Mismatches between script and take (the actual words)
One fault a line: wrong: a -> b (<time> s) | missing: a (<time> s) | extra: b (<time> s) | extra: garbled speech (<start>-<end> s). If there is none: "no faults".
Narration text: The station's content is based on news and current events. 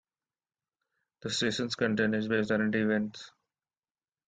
missing: on news and (2.5 s)